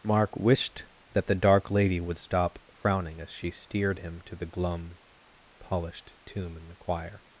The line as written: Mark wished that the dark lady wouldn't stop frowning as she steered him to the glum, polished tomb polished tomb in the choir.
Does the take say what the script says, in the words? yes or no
no